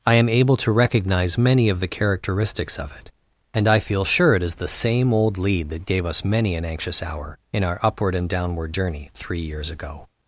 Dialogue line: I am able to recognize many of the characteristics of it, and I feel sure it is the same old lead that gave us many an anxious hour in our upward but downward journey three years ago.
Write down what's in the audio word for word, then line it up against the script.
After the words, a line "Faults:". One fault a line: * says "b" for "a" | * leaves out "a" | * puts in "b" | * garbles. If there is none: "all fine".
I am able to recognize many of the characteristics of it, and I feel sure it is the same old lead that gave us many an anxious hour in our upward and downward journey three years ago.
Faults:
* says "and" for "but"